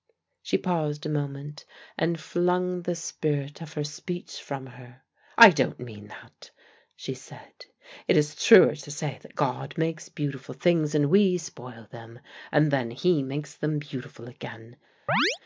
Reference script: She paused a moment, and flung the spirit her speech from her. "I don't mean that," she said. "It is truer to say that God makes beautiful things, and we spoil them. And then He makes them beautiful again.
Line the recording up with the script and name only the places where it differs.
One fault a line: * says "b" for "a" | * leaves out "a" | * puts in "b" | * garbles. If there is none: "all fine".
* puts in "of"